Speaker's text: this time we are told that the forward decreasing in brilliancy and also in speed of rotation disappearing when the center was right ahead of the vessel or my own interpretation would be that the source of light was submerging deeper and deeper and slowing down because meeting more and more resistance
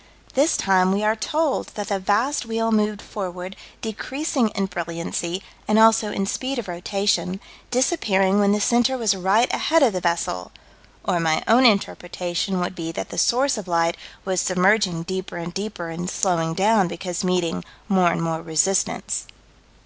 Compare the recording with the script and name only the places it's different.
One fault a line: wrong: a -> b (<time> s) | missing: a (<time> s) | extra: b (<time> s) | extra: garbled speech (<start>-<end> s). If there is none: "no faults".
extra: vast wheel moved (2.0 s)